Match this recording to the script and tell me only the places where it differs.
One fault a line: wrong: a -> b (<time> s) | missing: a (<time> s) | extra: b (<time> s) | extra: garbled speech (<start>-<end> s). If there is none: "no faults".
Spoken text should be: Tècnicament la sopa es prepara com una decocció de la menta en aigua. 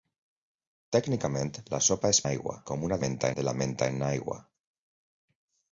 wrong: prepara -> aigua (2.3 s)
wrong: decocció -> menta (3.1 s)